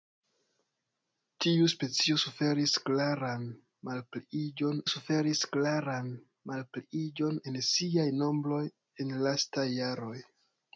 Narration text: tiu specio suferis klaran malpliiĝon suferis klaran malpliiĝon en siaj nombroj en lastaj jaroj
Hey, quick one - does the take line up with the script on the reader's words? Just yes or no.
yes